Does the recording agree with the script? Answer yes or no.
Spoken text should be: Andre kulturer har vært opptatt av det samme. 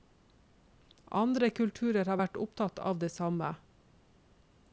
yes